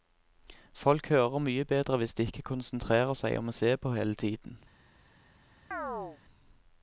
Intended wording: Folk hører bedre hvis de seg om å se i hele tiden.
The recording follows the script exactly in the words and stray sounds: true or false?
false